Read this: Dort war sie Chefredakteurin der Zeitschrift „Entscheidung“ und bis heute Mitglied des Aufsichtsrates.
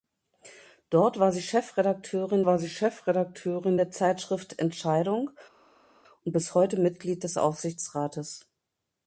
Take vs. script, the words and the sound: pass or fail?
fail